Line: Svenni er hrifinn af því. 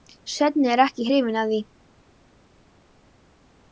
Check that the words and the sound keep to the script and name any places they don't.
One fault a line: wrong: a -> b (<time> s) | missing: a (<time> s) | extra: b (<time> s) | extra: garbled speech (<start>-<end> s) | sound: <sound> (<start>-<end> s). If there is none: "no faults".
extra: ekki (0.8 s)